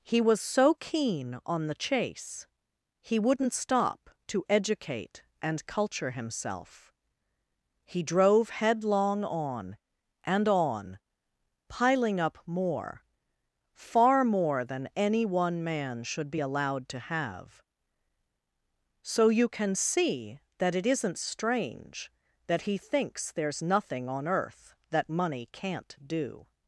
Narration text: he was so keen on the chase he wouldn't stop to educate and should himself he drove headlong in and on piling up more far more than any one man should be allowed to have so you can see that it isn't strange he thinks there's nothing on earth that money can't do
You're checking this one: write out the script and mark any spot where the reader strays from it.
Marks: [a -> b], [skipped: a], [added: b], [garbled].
he was so keen on the chase he wouldn't stop to educate and [should -> culture] himself he drove headlong [in -> on] and on piling up more far more than any one man should be allowed to have so you can see that it isn't strange [added: that] he thinks there's nothing on earth that money can't do